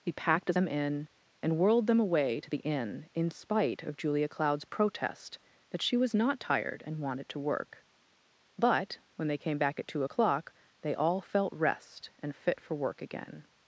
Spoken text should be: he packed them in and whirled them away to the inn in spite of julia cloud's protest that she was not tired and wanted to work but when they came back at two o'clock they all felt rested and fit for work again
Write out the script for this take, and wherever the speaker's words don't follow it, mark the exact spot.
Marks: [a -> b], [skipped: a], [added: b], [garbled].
he packed them in and whirled them away to the inn in spite of julia cloud's protest that she was not tired and wanted to work but when they came back at two o'clock they all felt [rested -> rest] and fit for work again